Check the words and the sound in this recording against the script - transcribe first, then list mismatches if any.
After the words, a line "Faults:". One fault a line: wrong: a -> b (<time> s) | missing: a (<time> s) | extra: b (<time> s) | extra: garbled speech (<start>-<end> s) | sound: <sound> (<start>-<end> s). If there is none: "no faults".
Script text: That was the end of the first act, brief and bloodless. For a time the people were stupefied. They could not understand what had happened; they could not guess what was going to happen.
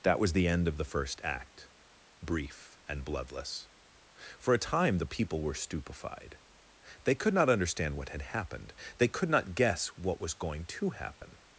That was the end of the first act, brief and bloodless. For a time the people were stupefied. They could not understand what had happened; they could not guess what was going to happen.
Faults:
sound: dropout (11.2-11.2 s)